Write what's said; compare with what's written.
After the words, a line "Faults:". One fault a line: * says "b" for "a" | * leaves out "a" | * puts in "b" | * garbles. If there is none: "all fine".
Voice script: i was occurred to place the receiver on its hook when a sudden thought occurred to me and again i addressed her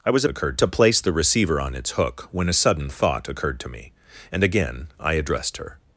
i was occurred to place the receiver on its hook when a sudden thought occurred to me and again i addressed her
Faults:
all fine